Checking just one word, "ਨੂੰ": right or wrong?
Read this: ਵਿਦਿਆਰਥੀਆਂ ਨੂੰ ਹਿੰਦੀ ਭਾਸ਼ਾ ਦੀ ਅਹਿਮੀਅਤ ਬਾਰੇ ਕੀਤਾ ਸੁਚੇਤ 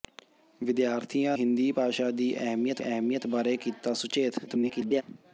wrong